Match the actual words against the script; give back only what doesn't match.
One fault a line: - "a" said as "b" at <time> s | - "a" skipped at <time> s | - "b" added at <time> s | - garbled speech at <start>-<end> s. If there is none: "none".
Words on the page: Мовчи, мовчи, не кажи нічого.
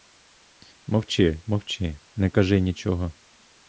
none